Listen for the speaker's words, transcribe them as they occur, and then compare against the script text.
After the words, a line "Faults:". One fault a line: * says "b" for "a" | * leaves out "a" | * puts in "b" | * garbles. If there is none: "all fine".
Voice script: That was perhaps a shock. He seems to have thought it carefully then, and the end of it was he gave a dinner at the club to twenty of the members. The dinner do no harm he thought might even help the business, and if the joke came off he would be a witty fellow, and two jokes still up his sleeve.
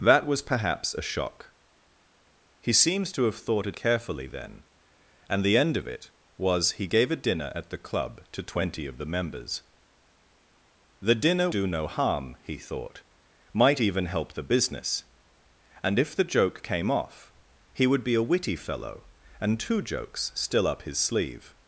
That was perhaps a shock. He seems to have thought it carefully then, and the end of it was he gave a dinner at the club to twenty of the members. The dinner do no harm he thought might even help the business, and if the joke came off he would be a witty fellow, and two jokes still up his sleeve.
Faults:
all fine